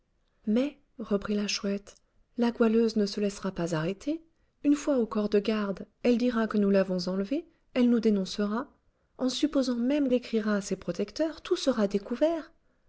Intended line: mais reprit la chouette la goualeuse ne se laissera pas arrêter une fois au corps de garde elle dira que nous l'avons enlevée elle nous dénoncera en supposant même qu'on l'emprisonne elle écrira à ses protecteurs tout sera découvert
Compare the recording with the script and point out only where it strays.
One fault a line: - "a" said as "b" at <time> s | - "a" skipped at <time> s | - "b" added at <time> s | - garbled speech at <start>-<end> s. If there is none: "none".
- "qu'on l'emprisonne elle" skipped at 10.1 s